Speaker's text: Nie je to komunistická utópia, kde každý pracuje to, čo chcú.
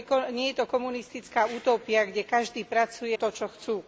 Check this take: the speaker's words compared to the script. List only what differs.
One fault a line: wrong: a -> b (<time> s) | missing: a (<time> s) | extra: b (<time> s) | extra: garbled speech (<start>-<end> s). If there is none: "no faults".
no faults